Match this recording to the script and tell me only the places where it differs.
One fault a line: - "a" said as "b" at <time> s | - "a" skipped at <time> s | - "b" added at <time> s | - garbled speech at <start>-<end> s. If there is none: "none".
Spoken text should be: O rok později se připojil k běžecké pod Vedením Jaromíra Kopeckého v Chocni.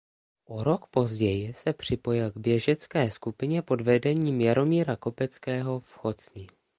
- "skupině" added at 3.1 s